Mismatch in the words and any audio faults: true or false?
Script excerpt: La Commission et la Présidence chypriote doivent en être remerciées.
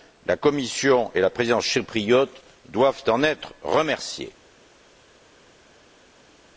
false